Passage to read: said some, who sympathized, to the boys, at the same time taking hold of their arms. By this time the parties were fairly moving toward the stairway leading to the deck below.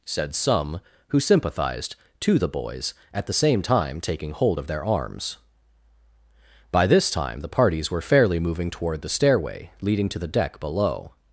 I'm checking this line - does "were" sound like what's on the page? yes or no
yes